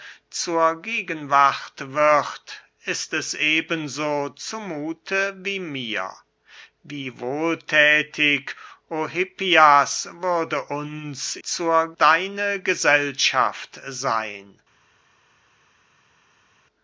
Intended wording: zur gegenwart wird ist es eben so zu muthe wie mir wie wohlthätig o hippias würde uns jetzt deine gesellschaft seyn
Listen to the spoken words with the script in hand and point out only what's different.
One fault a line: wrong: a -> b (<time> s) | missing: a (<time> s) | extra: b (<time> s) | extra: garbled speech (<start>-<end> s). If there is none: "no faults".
wrong: jetzt -> zur (11.4 s)